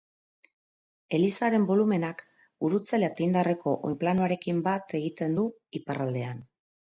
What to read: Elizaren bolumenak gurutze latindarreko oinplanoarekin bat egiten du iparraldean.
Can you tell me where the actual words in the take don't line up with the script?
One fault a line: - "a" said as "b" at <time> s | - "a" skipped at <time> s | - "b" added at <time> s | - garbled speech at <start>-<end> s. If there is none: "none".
none